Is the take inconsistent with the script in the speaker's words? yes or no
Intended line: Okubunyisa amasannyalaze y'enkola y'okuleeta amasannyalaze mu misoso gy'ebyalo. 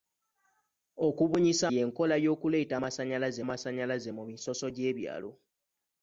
yes